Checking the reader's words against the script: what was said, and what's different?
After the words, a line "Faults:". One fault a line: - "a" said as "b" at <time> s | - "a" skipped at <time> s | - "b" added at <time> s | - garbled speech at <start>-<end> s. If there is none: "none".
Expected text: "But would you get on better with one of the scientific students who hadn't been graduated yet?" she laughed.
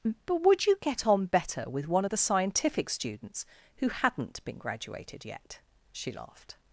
"But would you get on better with one of the scientific students who hadn't been graduated yet?" she laughed.
Faults:
none